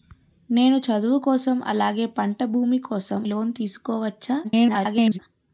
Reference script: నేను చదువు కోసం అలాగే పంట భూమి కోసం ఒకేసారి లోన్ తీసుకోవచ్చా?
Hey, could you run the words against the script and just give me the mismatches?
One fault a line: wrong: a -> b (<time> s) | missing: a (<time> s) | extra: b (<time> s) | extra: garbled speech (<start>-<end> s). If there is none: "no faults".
missing: ఒకేసారి (3.2 s)
extra: garbled speech (4.4-5.2 s)